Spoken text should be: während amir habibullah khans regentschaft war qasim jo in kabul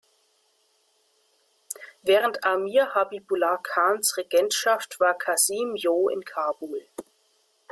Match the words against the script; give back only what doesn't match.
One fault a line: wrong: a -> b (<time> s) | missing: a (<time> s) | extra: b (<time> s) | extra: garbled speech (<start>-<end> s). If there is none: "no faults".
no faults